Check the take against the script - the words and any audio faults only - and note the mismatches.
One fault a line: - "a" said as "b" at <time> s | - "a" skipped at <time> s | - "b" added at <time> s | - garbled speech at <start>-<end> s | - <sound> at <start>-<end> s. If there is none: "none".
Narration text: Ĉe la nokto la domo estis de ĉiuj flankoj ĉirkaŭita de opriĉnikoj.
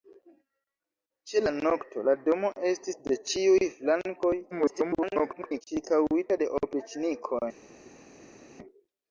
- garbled speech at 4.5-5.6 s